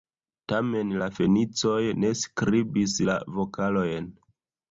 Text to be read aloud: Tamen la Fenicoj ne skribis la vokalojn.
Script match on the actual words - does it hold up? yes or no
yes